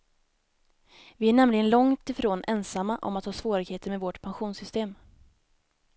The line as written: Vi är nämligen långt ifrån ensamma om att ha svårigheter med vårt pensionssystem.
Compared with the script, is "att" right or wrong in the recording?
right